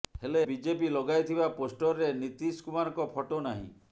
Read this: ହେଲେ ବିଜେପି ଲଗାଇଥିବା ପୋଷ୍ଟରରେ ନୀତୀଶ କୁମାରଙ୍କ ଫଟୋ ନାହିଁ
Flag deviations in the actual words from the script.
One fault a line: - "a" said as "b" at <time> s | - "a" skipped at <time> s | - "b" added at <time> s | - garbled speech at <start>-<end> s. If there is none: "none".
none